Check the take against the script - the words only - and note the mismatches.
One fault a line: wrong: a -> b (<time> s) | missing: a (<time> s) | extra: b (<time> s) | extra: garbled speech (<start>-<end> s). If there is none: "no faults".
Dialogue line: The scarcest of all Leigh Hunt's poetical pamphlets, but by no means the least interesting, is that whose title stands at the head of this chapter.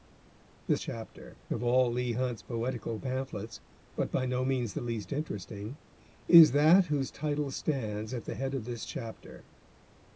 wrong: scarcest -> chapter (0.8 s)